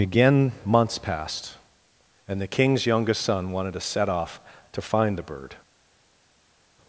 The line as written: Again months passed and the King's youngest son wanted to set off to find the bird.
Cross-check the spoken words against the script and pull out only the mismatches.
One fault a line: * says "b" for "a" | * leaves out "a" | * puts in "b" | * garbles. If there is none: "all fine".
all fine